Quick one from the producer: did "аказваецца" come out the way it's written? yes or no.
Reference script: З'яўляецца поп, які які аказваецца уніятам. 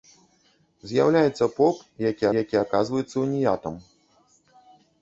yes